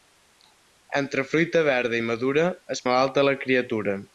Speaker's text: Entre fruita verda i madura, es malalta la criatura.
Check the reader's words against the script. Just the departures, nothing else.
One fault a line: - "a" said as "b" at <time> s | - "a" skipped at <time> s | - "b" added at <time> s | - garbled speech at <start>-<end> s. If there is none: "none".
none